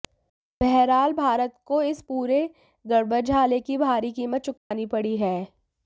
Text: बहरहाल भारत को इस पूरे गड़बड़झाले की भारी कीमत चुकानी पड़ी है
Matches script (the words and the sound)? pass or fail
fail